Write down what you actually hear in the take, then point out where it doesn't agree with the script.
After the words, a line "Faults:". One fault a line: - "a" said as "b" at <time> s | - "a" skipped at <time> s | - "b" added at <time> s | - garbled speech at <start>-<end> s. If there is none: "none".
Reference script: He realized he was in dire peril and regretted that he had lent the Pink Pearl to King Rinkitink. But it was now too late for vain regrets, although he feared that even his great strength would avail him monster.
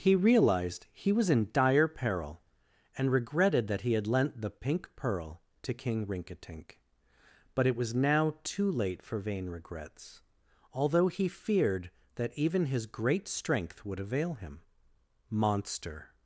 He realized he was in dire peril and regretted that he had lent the Pink Pearl to King Rinkitink. But it was now too late for vain regrets, although he feared that even his great strength would avail him monster.
Faults:
none